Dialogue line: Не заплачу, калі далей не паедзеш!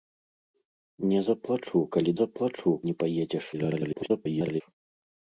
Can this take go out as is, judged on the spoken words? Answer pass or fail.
fail